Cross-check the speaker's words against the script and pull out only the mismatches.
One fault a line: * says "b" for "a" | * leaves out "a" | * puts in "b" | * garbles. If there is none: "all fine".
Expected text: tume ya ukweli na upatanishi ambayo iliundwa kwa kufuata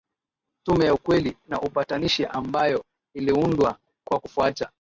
all fine